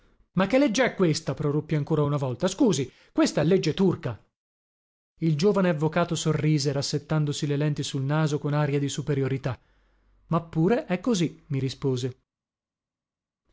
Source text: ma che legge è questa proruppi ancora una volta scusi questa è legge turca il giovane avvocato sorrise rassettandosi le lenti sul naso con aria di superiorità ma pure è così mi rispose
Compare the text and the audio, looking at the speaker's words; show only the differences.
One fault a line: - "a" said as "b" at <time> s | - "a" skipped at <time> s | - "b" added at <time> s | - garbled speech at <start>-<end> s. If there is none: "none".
none